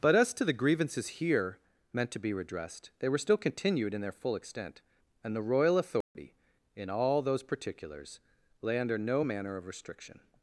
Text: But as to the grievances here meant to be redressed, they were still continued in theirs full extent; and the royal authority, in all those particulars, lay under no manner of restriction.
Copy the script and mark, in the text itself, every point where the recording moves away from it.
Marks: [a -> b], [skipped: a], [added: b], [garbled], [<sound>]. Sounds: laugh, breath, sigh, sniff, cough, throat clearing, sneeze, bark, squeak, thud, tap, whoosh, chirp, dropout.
But as to the grievances here meant to be redressed, they were still continued in [theirs -> their] full extent; and the royal authority, [dropout] in all those particulars, lay under no manner of restriction.